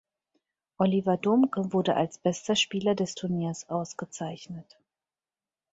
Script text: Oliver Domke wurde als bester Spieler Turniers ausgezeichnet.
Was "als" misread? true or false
false